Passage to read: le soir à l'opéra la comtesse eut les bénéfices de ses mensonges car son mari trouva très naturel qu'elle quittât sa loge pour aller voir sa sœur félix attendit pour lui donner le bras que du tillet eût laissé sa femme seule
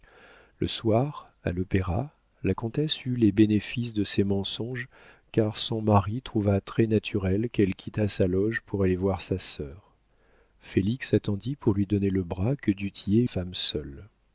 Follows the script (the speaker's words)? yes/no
no